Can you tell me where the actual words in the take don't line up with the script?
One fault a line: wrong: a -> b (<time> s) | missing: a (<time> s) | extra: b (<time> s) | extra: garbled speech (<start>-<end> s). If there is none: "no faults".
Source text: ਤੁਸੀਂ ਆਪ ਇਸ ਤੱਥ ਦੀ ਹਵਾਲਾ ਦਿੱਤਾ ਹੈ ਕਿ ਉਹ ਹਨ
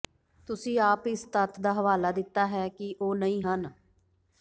wrong: ਦੀ -> ਦਾ (1.6 s)
extra: ਨਹੀਂ (3.2 s)